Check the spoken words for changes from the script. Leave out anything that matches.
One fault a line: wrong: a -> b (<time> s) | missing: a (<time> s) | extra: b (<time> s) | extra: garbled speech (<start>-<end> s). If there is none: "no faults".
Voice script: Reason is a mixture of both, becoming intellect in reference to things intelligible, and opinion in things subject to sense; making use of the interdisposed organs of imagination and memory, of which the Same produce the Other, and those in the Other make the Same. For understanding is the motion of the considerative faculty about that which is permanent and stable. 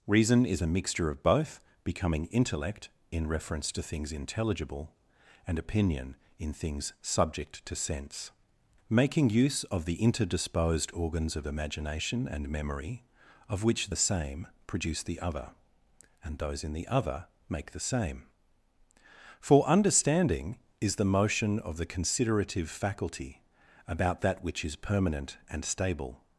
no faults